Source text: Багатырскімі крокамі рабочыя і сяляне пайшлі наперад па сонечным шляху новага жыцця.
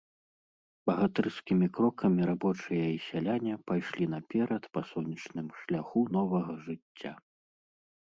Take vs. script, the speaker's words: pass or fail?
pass